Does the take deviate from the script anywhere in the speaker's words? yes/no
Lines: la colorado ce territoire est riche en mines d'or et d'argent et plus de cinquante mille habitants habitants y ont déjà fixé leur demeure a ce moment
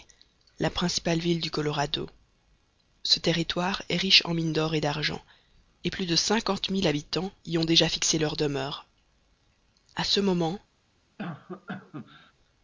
yes